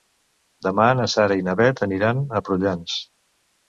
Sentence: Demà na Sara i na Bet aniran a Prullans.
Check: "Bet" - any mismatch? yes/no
no